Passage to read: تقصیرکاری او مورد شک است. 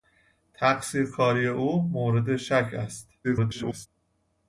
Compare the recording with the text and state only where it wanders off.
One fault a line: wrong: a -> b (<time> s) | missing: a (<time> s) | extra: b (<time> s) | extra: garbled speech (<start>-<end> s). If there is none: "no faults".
extra: garbled speech (3.2-3.9 s)